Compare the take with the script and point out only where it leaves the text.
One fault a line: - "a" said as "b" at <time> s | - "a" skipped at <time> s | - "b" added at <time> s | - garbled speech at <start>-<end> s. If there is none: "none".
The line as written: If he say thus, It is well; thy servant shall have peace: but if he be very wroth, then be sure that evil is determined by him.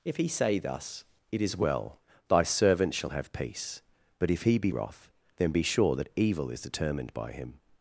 - "very" skipped at 4.7 s